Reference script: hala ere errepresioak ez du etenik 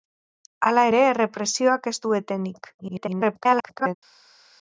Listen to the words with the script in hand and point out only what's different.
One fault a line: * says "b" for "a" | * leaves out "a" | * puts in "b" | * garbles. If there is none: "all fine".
* garbles